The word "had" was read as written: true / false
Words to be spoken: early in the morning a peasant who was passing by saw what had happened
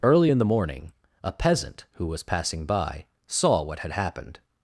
true